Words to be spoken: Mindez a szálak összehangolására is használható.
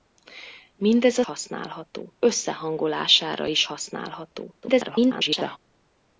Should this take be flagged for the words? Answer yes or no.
yes